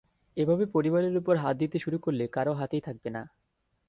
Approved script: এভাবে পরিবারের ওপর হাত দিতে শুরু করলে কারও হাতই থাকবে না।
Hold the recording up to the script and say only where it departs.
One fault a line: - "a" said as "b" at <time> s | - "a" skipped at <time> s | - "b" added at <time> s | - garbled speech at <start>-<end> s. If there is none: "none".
none